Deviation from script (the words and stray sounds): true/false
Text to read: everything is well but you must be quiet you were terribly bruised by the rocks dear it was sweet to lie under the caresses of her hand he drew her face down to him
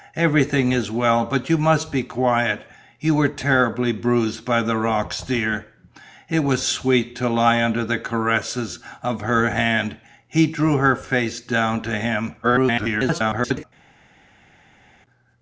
true